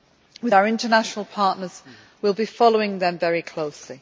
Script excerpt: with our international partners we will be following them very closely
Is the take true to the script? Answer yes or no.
yes